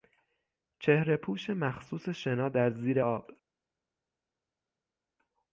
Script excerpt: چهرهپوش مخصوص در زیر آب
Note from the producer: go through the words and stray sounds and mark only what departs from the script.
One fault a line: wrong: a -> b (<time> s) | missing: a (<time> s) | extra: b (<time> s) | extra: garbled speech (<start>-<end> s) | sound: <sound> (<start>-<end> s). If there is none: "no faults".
extra: شنا (2.1 s)